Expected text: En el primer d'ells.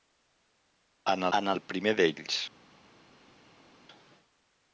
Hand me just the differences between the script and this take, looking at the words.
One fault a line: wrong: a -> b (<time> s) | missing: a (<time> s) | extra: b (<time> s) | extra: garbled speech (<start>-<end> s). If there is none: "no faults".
extra: en (1.4 s)